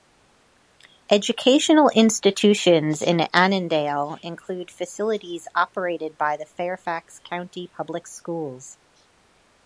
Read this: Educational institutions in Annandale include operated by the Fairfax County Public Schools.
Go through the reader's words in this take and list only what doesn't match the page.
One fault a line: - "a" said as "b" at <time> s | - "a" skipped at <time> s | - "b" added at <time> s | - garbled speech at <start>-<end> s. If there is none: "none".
- "facilities" added at 4.7 s